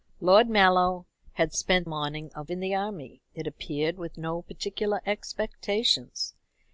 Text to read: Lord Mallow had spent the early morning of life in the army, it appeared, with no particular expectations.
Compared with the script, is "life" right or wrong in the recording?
wrong